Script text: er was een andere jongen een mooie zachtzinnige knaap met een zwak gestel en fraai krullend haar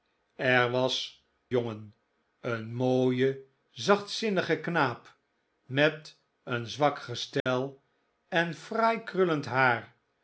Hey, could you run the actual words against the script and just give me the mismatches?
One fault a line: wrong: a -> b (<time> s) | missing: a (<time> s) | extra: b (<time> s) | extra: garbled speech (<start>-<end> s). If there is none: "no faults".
missing: een andere (1.2 s)